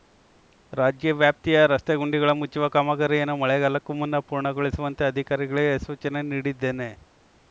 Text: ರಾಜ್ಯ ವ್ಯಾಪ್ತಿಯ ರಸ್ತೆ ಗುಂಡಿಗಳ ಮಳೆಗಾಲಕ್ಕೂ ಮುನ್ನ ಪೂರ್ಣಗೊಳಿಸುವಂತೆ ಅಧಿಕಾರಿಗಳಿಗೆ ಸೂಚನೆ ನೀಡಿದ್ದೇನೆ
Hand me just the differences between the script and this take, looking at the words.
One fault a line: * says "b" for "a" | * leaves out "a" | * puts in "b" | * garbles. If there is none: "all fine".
* puts in "ಮುಚ್ಚುವ ಕಾಮಗಾರಿಯನ್ನು"